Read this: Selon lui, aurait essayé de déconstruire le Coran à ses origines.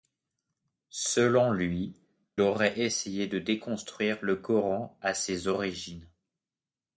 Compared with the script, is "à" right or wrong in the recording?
right